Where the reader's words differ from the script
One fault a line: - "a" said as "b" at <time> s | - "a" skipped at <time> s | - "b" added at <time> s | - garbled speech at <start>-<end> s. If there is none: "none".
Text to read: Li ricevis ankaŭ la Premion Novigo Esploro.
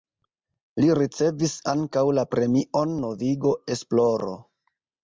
none